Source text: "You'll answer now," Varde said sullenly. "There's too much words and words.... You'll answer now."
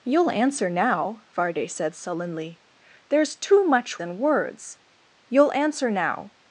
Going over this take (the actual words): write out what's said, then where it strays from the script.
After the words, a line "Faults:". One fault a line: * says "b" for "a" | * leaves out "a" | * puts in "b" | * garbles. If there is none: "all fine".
"You'll answer now," Varde said sullenly. "There's too much and words.... You'll answer now."
Faults:
* leaves out "words"